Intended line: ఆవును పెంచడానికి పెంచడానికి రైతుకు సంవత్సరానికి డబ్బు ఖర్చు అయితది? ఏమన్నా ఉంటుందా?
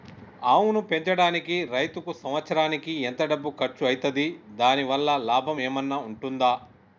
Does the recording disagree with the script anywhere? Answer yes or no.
yes